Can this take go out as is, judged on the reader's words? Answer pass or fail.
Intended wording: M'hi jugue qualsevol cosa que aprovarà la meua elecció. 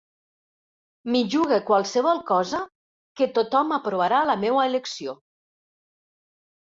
fail